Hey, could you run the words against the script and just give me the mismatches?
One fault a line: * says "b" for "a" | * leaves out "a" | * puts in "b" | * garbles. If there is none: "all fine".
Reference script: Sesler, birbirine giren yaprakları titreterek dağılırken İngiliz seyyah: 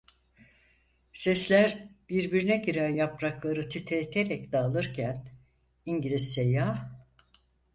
all fine